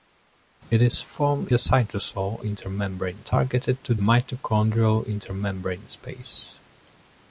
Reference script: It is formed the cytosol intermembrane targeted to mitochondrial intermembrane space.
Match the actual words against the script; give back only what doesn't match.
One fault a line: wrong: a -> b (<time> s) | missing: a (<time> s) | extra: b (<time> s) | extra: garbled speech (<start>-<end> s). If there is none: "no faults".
no faults